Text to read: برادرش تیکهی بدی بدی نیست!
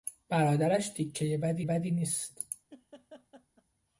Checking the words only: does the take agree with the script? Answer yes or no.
yes